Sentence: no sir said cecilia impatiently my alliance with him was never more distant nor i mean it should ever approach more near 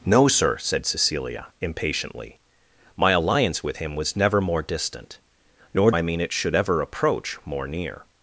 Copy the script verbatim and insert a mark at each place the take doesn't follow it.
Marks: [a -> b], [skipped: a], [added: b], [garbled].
no sir said cecilia impatiently my alliance with him was never more distant nor i mean it should ever approach more near